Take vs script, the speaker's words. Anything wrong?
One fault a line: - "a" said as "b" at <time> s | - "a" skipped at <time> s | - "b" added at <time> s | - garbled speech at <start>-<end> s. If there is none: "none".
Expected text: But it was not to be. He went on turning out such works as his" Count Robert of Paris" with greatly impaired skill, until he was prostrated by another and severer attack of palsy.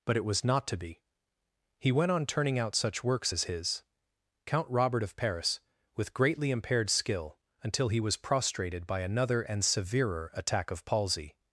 none